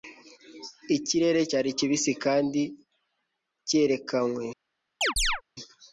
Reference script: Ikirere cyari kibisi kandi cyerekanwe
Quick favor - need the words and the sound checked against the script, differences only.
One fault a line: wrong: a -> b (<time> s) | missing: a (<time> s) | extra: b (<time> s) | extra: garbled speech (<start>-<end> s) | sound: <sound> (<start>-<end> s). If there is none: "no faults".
sound: chirp (5.0-5.4 s)